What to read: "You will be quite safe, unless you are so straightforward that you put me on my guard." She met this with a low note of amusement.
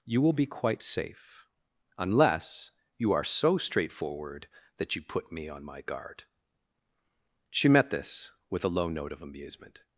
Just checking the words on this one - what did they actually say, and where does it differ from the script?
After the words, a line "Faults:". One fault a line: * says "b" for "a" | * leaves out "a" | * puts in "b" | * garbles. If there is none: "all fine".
"You will be quite safe, unless you are so straightforward that you put me on my guard." She met this with a low note of amusement.
Faults:
all fine